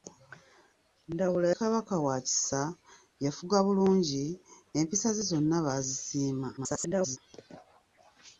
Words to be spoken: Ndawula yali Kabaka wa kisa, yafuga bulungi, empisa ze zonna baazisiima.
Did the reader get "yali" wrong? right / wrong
wrong